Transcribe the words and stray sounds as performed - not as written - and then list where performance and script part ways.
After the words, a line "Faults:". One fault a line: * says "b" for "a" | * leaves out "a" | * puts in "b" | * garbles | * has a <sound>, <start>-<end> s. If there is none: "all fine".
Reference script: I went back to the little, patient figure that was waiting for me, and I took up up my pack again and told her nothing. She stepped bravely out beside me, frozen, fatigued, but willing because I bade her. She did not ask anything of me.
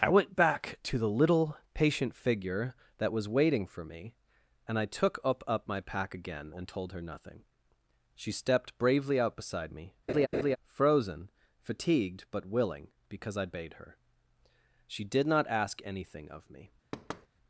I went back to the little, patient figure that was waiting for me, and I took up up my pack again and told her nothing. She stepped bravely out beside me, frozen, fatigued, but willing because I bade her. She did not ask anything of me.
Faults:
* has a laugh, 10.1-10.6 s
* has a thud, 16.9-17.3 s